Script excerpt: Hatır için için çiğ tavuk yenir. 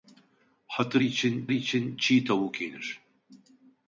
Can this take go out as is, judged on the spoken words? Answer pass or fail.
pass